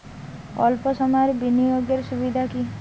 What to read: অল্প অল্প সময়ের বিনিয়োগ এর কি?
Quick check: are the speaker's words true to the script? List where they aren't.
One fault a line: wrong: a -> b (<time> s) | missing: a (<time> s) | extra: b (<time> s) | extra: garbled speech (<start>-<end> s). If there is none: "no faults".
missing: অল্প (0.8 s)
extra: সুবিধা (2.1 s)